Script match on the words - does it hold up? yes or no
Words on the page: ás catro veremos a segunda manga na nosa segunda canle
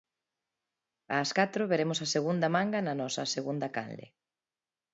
yes